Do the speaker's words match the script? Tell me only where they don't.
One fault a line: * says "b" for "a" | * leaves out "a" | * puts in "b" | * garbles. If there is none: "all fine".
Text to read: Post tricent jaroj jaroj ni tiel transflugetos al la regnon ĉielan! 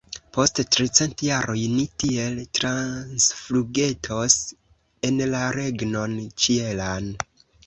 * leaves out "jaroj"
* says "en" for "al"